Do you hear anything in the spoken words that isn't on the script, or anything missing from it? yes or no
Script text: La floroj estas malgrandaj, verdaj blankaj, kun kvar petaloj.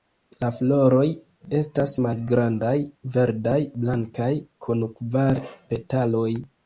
no